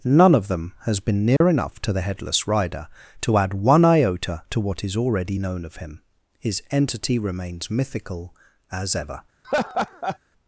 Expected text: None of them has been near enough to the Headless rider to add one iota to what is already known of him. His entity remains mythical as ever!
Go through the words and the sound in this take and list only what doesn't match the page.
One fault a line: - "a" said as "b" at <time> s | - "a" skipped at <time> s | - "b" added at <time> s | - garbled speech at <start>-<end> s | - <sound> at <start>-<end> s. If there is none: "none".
- dropout at 1.4-1.4 s
- laugh at 9.4-10.2 s